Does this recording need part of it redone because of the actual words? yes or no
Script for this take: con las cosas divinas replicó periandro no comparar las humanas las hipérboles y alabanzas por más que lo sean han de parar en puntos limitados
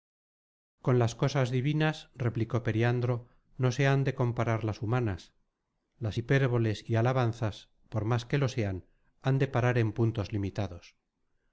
yes